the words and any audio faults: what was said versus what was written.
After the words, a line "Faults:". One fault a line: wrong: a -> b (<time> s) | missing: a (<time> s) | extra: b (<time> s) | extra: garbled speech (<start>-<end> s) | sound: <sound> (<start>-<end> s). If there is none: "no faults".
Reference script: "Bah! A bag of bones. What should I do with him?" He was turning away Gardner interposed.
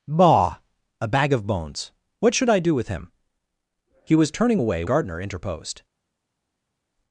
"Bah! A bag of bones. What should I do with him?" He was turning away Gardner interposed.
Faults:
no faults